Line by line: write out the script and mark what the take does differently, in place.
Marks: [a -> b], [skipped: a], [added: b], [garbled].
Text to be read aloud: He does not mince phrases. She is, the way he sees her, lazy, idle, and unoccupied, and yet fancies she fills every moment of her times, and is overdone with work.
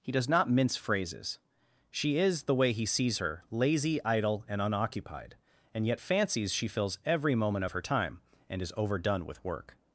He does not mince phrases. She is, the way he sees her, lazy, idle, and unoccupied, and yet fancies she fills every moment of her [times, -> time] and is overdone with work.